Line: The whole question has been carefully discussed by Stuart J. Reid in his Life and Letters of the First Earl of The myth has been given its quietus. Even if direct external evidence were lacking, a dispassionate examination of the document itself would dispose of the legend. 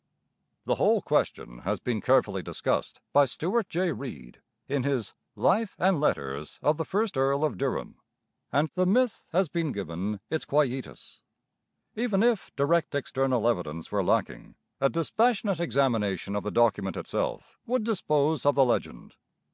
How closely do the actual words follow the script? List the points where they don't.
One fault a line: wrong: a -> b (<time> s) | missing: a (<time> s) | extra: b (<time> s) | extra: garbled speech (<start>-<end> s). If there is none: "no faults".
extra: Durham and (7.6 s)